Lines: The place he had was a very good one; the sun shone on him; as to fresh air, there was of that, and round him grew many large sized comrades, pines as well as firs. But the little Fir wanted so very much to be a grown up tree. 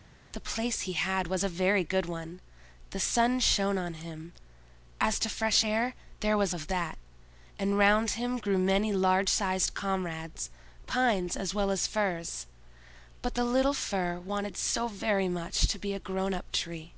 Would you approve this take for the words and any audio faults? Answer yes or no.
yes